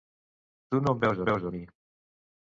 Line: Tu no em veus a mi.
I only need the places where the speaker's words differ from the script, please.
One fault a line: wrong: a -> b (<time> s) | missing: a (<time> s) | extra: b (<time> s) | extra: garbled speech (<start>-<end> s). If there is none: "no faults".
extra: veus (1.3 s)